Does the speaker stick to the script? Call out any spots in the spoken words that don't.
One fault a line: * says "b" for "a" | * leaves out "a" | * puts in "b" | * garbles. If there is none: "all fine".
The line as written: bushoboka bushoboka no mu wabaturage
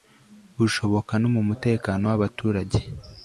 * leaves out "bushoboka"
* puts in "mutekano"